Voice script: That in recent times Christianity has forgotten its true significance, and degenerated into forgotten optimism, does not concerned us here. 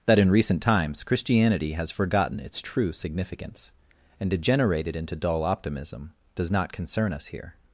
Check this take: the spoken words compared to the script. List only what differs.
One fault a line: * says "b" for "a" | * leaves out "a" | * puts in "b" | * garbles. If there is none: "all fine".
* says "dull" for "forgotten"
* says "concern" for "concerned"